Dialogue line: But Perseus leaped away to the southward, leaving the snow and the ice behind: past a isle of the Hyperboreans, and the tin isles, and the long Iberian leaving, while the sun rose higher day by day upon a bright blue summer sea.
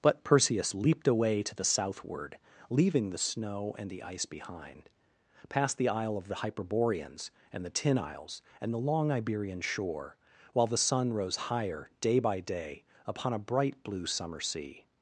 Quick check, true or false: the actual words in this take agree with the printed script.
false